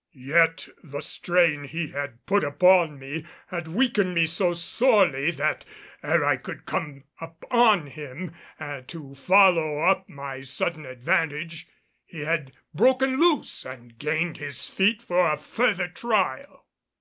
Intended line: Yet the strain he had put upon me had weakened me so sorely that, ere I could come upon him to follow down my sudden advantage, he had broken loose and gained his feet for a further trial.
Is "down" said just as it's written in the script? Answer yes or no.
no